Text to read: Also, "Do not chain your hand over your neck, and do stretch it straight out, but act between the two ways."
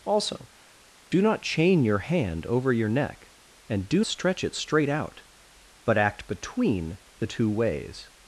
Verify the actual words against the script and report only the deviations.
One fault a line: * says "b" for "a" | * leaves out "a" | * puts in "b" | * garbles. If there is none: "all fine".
all fine